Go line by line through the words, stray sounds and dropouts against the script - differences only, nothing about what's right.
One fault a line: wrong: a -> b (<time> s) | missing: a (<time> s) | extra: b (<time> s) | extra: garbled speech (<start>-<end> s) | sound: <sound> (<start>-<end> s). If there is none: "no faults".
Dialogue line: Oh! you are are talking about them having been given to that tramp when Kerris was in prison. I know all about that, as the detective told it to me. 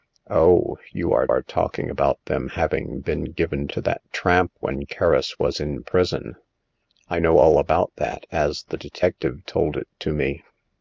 no faults